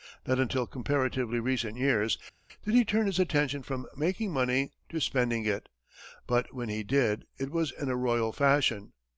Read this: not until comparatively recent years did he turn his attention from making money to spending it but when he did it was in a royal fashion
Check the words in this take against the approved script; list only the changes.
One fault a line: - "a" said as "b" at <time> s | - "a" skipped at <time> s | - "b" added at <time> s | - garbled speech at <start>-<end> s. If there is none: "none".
none